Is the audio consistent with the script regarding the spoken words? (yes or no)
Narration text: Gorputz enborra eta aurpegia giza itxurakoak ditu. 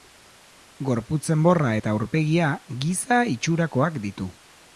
yes